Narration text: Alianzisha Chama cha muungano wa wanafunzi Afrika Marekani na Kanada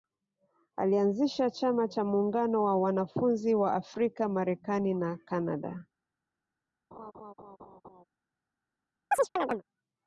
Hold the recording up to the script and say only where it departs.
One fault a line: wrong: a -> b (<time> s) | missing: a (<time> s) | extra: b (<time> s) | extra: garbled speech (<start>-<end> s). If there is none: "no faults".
extra: wa (3.5 s)